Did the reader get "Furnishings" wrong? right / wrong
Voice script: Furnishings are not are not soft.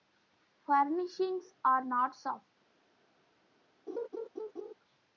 right